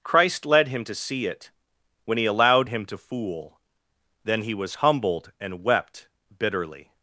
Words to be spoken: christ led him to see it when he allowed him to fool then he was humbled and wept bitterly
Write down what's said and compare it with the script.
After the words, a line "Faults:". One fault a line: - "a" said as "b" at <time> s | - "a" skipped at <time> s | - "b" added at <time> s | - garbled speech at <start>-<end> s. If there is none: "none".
christ led him to see it when he allowed him to fool then he was humbled and wept bitterly
Faults:
none